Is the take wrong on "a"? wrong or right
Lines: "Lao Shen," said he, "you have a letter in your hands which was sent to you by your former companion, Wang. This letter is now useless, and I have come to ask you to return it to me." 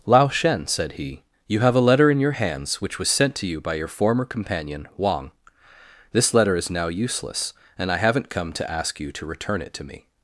right